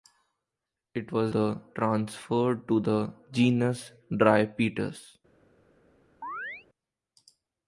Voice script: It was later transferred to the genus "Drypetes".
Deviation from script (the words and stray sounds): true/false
true